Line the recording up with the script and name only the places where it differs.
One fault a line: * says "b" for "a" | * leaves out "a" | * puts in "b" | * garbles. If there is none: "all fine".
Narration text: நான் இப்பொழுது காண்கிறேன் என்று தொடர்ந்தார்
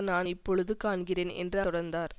all fine